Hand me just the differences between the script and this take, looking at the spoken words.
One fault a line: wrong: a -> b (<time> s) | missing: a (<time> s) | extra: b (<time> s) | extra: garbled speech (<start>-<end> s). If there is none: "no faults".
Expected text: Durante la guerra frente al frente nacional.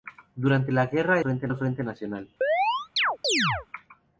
no faults